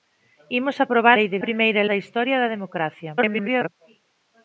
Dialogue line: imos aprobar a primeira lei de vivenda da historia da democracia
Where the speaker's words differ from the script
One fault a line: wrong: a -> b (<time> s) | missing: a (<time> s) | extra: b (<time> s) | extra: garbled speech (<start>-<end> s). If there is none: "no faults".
missing: a primeira (1.2 s)
wrong: vivenda -> primeira (1.4 s)
extra: garbled speech (3.2-3.7 s)